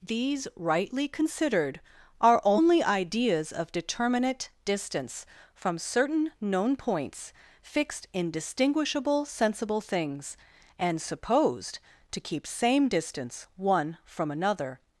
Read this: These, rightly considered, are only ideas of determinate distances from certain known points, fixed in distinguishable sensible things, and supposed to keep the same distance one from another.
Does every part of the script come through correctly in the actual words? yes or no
no